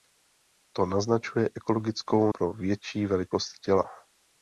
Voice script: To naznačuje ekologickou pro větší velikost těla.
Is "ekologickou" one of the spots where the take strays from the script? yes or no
no